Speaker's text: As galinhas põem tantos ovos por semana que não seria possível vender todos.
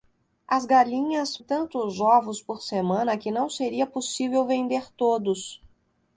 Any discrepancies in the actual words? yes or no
yes